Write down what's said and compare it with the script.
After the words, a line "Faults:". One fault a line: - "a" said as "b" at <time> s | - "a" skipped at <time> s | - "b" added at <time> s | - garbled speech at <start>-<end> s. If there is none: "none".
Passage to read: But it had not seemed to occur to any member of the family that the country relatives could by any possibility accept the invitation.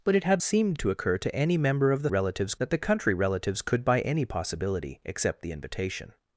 But it had seemed to occur to any member of the relatives that the country relatives could by any possibility accept the invitation.
Faults:
- "not" skipped at 0.4 s
- "family" said as "relatives" at 2.1 s